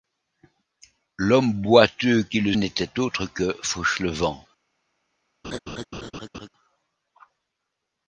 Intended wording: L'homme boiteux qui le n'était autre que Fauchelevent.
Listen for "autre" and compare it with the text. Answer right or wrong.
right